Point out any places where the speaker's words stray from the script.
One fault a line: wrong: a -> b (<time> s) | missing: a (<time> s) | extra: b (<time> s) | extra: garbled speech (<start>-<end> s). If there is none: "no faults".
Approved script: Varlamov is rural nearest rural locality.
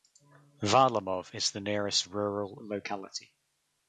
wrong: rural -> the (1.5 s)